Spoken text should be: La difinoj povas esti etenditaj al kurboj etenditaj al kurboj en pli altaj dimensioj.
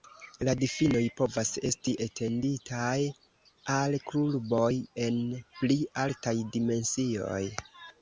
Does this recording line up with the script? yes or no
no